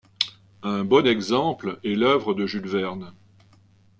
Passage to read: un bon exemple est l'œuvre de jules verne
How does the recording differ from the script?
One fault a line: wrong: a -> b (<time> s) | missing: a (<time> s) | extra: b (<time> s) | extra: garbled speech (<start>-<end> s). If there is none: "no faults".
no faults